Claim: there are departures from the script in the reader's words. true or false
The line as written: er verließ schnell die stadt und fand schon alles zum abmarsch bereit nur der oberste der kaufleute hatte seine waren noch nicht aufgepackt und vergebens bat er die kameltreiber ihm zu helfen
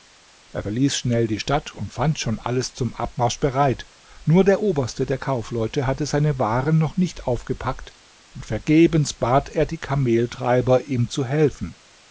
false